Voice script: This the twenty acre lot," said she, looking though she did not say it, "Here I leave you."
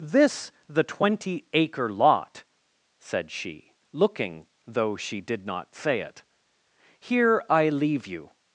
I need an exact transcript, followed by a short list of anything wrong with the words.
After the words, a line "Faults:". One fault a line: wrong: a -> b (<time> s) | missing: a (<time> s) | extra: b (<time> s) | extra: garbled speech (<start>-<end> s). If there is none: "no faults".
This the twenty acre lot," said she, looking though she did not say it, "Here I leave you."
Faults:
no faults